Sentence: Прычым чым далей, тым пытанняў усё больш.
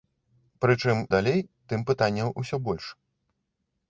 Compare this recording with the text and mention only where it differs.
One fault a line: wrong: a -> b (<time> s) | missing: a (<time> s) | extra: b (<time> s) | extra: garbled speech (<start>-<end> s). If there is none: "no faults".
missing: чым (1.0 s)